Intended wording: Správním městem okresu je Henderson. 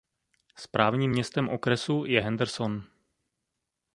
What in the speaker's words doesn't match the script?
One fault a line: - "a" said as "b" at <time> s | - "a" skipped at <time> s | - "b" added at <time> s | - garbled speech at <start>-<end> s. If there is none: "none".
none